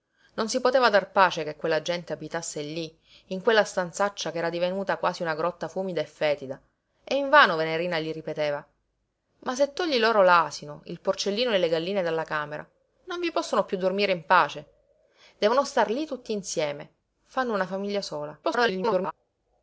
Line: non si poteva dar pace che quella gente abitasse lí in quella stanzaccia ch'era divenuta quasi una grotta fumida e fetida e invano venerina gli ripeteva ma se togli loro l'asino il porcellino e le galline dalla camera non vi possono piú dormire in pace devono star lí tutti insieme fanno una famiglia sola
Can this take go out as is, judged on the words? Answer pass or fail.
fail